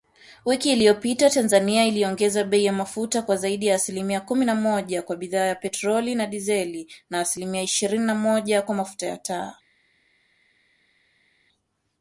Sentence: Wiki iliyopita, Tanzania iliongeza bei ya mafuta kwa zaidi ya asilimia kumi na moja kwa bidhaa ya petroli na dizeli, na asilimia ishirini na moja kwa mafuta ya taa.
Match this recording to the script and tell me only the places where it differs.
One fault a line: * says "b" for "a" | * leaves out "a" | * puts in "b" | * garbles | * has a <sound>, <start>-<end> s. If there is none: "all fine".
all fine